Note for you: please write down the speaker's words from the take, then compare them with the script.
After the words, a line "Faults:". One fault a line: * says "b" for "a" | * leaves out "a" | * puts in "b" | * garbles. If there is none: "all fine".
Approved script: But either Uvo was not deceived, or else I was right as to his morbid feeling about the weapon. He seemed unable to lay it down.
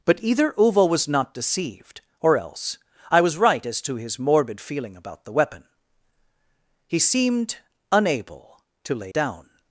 But either Uvo was not deceived, or else I was right as to his morbid feeling about the weapon. He seemed unable to lay down.
Faults:
* leaves out "it"